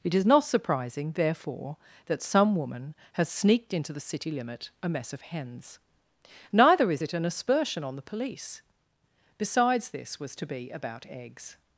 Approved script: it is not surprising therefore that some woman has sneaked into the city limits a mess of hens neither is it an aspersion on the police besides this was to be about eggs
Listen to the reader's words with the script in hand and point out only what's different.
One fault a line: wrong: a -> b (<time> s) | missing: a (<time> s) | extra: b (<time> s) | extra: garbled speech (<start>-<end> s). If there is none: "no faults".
wrong: limits -> limit (4.3 s)